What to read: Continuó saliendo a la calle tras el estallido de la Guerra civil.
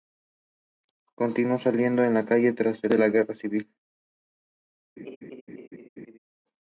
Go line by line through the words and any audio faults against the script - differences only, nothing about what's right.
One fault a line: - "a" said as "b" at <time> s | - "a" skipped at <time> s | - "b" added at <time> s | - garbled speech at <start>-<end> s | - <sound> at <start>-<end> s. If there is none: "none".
- "estallido" skipped at 2.9 s
- laugh at 5.0-6.2 s